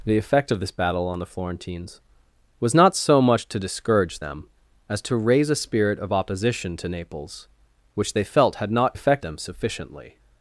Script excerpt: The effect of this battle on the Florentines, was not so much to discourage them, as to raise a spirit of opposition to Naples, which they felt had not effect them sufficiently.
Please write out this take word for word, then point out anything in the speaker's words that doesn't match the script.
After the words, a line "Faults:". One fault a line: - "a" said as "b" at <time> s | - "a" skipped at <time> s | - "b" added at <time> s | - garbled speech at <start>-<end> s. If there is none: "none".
The effect of this battle on the Florentines, was not so much to discourage them, as to raise a spirit of opposition to Naples, which they felt had not effect them sufficiently.
Faults:
none